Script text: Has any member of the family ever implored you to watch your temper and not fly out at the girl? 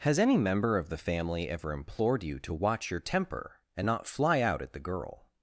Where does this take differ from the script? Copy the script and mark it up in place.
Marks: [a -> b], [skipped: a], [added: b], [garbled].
Has any member of the family ever implored you to watch your temper and not fly out at the girl?